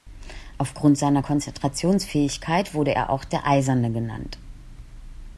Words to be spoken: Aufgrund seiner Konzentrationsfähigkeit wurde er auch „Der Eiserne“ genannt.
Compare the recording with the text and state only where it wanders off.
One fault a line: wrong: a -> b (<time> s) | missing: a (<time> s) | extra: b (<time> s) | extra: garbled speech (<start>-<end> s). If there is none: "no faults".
no faults